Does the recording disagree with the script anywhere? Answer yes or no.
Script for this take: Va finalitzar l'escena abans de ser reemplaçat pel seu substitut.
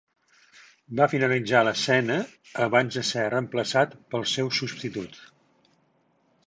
no